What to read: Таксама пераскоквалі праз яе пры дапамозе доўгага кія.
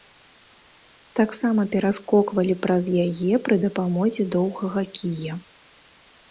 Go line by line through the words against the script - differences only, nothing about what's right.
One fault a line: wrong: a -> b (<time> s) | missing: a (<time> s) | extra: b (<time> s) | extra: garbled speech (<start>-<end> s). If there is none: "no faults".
no faults